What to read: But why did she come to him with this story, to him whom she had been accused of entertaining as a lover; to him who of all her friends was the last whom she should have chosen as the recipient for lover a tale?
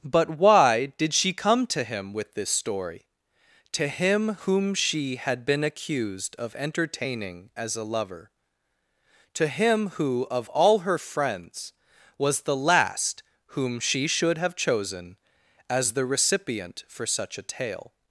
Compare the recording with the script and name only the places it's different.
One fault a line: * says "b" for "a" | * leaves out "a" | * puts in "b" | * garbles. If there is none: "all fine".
* says "such" for "lover"